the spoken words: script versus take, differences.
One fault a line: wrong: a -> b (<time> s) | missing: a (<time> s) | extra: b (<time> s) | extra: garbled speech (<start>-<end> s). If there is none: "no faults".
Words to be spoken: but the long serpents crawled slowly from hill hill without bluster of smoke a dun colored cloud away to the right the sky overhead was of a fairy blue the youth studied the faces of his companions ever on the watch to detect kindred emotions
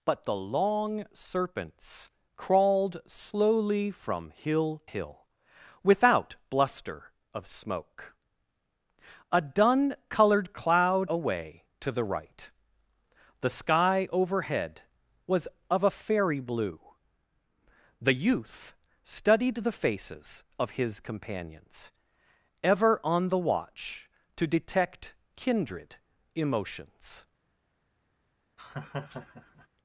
no faults